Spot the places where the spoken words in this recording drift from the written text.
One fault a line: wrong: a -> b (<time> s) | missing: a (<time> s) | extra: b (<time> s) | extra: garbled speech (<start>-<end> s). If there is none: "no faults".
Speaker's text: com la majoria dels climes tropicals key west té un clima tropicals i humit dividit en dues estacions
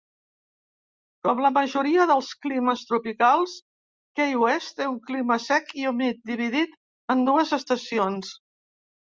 wrong: tropicals -> sec (5.5 s)